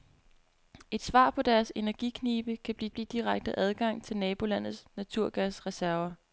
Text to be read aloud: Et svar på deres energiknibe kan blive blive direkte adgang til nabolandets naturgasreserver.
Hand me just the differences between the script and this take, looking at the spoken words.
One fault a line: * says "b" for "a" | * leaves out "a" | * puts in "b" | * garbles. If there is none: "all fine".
all fine